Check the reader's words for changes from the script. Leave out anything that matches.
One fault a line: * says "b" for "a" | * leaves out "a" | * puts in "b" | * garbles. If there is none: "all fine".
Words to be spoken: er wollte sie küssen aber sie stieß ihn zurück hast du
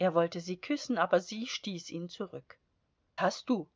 all fine